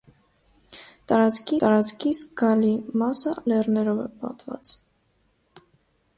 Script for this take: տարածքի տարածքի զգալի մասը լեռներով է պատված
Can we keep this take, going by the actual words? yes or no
yes